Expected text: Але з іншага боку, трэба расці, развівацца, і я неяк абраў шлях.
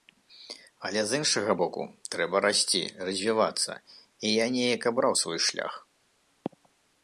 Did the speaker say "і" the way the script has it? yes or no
yes